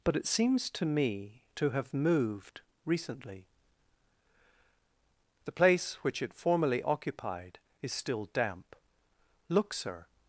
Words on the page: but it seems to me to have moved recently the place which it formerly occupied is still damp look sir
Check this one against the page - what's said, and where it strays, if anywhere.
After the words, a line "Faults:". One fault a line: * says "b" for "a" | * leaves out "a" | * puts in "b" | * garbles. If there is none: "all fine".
but it seems to me to have moved recently the place which it formerly occupied is still damp look sir
Faults:
all fine